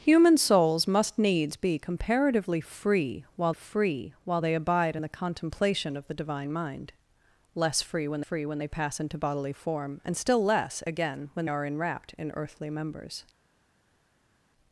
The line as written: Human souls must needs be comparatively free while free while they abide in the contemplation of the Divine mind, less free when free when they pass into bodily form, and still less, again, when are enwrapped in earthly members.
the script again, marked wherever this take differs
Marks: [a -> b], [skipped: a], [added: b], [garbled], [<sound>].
Human souls must needs be comparatively free while free while they abide in the contemplation of the Divine mind, less free when free when they pass into bodily form, and still less, again, when are enwrapped in earthly members.